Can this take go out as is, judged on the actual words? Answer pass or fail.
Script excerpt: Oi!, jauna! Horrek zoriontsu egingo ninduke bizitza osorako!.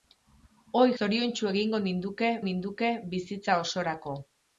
fail